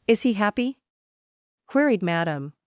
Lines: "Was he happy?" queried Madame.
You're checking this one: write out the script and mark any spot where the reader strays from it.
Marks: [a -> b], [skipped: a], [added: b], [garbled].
["Was -> Is] he happy?" queried Madame.